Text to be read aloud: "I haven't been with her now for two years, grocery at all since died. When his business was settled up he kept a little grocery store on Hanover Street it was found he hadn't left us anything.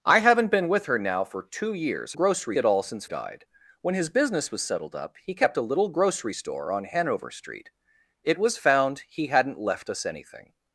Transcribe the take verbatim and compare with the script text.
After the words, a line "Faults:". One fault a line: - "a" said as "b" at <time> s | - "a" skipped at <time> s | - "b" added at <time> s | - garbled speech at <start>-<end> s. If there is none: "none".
"I haven't been with her now for two years, grocery at all since died. When his business was settled up he kept a little grocery store on Hanover Street it was found he hadn't left us anything.
Faults:
none